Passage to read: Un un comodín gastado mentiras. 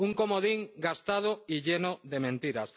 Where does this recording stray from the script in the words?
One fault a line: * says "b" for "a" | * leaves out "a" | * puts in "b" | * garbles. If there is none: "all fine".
* leaves out "un"
* puts in "y lleno de"